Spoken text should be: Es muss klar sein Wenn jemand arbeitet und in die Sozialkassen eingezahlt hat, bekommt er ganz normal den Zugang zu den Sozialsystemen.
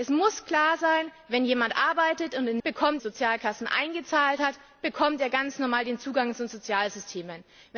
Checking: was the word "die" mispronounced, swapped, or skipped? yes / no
yes